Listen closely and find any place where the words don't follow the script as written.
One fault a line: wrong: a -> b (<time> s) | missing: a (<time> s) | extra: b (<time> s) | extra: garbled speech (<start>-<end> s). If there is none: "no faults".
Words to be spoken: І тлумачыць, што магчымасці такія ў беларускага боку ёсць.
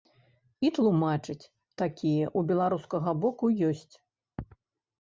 missing: што магчымасці (1.4 s)